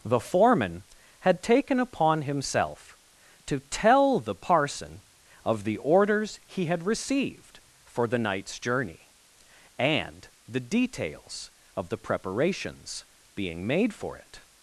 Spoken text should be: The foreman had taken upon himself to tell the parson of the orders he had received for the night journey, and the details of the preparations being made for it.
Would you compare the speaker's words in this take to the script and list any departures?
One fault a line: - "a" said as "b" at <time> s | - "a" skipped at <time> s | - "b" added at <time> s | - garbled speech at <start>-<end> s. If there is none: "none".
- "night" said as "nights" at 8.2 s